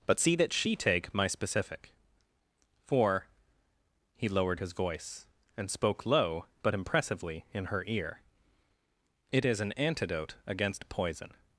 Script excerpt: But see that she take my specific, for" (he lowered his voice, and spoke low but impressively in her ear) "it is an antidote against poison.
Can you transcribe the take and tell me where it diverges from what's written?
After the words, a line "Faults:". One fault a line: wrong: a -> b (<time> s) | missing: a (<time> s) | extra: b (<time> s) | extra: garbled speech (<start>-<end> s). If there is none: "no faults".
But see that she take my specific, for" (he lowered his voice, and spoke low but impressively in her ear) "it is an antidote against poison.
Faults:
no faults